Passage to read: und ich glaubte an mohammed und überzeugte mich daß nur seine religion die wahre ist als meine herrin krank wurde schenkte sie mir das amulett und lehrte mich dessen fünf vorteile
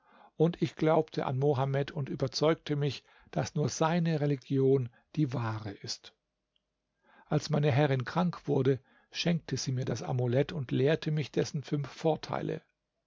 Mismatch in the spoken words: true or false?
false